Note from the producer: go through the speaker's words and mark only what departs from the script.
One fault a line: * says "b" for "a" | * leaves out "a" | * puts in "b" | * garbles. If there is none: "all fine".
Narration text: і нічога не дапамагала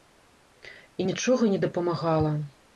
all fine